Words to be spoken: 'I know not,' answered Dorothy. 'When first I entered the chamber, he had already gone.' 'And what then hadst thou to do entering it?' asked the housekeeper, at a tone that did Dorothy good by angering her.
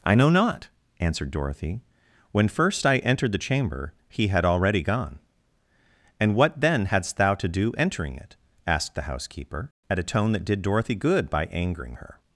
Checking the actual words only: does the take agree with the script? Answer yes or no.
yes